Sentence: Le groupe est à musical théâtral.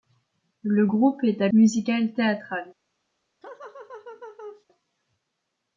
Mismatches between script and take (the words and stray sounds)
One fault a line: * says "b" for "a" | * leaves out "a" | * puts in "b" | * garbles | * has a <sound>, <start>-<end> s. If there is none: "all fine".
* has a laugh, 3.4-4.7 s